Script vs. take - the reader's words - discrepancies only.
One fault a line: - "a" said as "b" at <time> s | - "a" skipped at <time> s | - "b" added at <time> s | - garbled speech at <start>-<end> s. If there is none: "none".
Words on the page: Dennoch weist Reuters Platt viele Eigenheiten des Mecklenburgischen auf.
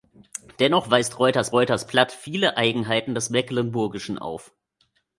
- "Reuters" added at 1.5 s